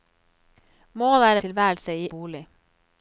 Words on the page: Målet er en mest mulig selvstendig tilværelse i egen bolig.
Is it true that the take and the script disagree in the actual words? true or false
true